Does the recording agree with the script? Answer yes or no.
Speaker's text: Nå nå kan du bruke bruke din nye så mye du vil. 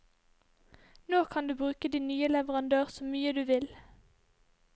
no